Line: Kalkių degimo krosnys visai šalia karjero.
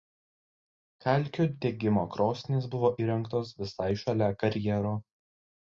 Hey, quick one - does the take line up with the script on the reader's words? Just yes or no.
no